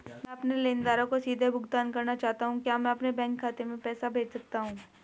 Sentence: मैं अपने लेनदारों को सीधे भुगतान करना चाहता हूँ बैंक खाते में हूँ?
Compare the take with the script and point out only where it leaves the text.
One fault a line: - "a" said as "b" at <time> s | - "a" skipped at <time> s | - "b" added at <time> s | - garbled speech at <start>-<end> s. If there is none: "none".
- "क्या मैं अपने" added at 2.6 s
- "पैसा भेज सकता" added at 3.8 s